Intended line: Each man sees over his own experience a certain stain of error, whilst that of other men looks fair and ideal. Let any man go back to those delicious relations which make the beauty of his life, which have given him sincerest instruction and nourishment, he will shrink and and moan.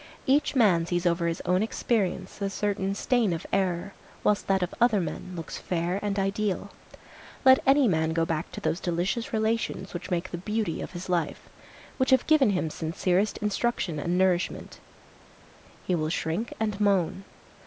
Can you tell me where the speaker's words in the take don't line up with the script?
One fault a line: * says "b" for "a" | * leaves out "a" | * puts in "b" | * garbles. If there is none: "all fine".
* leaves out "and"